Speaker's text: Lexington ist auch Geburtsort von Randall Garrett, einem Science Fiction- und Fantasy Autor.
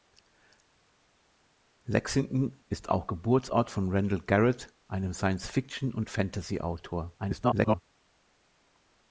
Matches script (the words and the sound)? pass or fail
fail